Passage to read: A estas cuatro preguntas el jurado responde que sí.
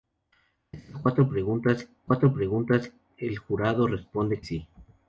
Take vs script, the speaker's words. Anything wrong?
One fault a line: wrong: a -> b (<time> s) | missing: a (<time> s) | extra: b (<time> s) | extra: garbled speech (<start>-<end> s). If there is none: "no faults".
extra: cuatro preguntas (2.0 s)
missing: que (4.4 s)